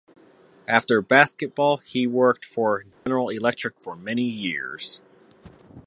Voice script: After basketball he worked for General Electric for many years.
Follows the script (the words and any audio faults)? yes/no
no